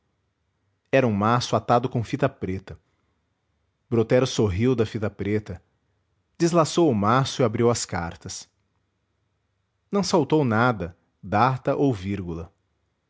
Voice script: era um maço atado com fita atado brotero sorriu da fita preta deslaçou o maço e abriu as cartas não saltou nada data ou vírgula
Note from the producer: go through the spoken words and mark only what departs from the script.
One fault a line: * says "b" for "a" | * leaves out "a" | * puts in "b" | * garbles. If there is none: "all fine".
* says "preta" for "atado"